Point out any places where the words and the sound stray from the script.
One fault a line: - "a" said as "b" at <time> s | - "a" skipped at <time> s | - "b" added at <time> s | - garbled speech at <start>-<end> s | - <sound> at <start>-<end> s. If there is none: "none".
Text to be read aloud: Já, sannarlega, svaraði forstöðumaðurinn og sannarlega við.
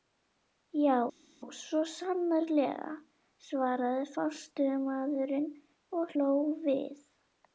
- "svo" added at 1.6 s
- "sannarlega" said as "hló" at 6.1 s